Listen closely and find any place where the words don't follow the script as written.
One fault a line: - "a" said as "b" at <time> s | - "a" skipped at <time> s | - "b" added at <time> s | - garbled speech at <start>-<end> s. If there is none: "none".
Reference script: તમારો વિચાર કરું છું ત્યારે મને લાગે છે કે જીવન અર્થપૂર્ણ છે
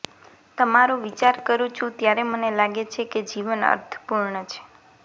none